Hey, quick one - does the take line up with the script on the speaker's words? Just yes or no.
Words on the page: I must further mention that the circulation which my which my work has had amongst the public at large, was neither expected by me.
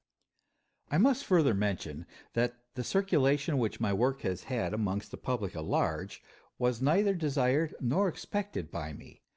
no